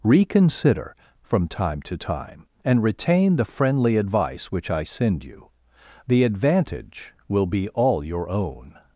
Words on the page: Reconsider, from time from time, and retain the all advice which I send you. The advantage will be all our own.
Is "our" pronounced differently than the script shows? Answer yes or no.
yes